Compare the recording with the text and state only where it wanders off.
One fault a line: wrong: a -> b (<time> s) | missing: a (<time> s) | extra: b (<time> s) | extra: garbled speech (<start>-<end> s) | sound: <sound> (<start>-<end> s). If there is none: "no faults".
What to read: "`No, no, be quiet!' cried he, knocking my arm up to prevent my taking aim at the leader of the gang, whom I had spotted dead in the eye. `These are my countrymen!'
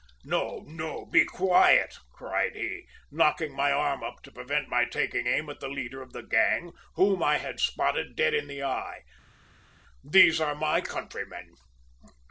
no faults